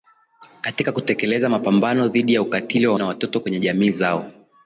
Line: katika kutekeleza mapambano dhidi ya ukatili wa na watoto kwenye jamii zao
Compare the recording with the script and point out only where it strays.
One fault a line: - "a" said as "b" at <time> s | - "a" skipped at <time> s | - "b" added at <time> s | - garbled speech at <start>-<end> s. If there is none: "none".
none